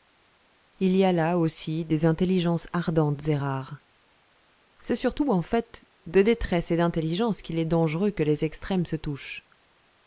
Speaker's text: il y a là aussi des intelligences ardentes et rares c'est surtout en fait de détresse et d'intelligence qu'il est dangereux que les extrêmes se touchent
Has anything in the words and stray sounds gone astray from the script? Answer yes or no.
no